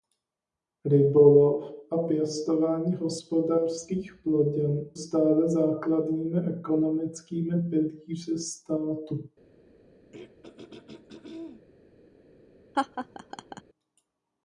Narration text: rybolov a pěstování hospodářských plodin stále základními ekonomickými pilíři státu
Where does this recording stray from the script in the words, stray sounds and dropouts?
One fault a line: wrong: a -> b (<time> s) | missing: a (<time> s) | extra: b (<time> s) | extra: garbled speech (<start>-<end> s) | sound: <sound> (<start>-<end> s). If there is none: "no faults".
sound: throat clearing (10.1-11.7 s)
sound: laugh (12.7-13.6 s)